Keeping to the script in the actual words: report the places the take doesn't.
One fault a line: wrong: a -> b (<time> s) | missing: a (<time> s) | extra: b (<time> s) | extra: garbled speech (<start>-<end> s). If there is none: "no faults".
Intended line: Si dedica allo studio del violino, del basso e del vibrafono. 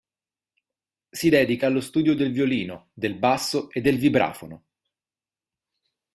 no faults